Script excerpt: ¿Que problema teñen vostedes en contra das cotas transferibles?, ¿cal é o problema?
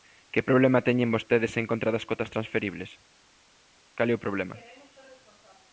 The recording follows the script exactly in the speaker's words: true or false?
true